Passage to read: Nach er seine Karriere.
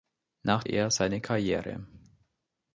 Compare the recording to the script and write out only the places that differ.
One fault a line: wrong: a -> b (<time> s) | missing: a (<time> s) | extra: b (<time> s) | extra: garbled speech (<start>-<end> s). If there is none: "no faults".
no faults